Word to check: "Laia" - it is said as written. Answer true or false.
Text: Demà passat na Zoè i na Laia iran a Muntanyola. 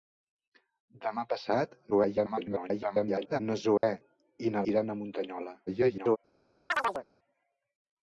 false